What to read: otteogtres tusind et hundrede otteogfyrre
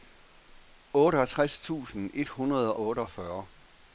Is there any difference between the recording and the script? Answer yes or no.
no